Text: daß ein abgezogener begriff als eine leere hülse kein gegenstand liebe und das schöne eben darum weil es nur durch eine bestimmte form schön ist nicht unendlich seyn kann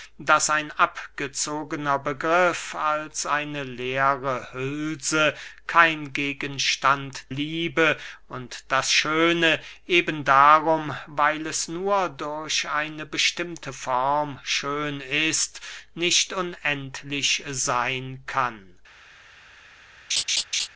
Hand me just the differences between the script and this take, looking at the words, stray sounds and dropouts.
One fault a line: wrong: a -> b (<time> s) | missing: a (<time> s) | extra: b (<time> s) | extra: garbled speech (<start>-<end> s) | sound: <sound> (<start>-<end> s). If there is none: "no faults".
sound: laugh (20.1-20.7 s)